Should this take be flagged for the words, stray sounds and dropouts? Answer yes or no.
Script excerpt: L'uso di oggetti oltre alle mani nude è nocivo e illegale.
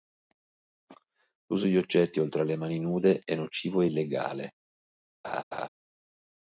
yes